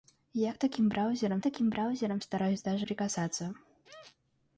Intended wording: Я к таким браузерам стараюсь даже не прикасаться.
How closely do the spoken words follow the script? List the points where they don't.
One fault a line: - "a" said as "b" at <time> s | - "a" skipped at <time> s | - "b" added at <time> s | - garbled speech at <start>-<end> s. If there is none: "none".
- "таким браузерам" added at 1.4 s
- "не" skipped at 2.9 s